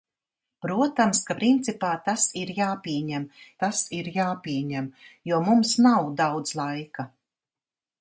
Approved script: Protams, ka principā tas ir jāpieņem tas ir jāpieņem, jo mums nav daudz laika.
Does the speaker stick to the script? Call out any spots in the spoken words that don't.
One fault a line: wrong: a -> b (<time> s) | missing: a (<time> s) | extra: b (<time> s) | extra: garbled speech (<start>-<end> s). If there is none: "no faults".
no faults